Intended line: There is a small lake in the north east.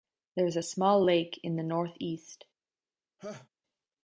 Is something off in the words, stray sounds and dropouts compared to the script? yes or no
yes